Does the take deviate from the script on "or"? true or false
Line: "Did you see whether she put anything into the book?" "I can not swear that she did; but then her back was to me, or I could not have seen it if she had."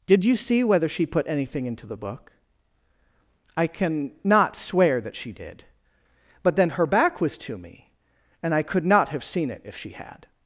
true